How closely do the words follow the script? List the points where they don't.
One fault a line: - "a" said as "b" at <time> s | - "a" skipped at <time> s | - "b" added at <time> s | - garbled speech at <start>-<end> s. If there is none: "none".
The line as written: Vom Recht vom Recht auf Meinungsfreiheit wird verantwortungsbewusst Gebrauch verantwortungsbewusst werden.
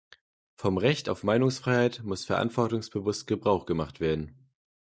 - "vom Recht" skipped at 1.1 s
- "wird" said as "muss" at 2.0 s
- "verantwortungsbewusst" said as "gemacht" at 3.7 s